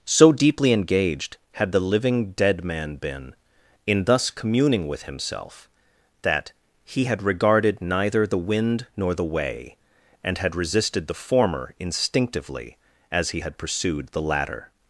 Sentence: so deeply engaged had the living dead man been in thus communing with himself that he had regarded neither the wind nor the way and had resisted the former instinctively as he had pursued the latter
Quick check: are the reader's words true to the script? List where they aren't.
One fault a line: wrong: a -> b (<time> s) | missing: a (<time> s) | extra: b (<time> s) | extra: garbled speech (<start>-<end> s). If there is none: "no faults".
no faults